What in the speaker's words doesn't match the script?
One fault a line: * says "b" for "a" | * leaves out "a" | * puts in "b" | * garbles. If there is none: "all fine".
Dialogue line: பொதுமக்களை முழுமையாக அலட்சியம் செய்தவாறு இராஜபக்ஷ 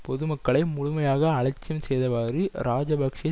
all fine